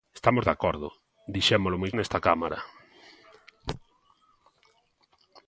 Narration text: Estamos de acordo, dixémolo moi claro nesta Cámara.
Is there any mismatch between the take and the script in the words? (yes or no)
yes